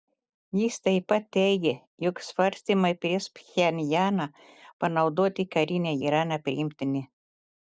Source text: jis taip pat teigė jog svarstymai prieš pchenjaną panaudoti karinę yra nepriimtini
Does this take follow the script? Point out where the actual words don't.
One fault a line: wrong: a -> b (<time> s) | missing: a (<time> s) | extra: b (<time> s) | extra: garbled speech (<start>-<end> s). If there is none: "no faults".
no faults